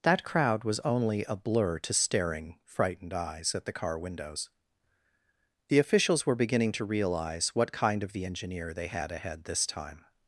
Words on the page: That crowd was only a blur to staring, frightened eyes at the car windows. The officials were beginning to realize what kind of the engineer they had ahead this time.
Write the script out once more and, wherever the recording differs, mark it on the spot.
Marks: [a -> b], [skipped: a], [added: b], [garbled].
That crowd was only a blur to staring, frightened eyes at the car windows. The officials were beginning to realize what kind of the engineer they had ahead this time.